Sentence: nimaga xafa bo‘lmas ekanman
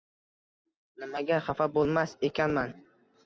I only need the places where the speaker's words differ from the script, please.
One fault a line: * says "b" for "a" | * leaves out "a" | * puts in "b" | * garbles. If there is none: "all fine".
all fine